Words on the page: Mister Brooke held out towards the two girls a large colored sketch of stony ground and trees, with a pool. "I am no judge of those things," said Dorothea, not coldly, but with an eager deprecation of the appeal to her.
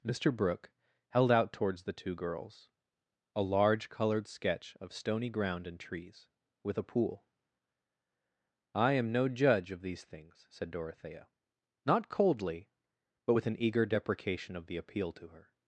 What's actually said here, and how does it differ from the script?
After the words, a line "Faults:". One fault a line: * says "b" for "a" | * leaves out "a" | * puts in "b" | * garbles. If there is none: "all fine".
Mister Brooke held out towards the two girls a large colored sketch of stony ground and trees, with a pool. "I am no judge of these things," said Dorothea, not coldly, but with an eager deprecation of the appeal to her.
Faults:
* says "these" for "those"